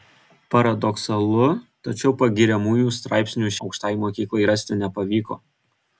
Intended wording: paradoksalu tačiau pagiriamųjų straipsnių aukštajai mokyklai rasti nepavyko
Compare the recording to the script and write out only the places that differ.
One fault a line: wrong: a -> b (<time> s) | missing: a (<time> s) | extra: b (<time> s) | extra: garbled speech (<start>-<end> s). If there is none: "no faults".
no faults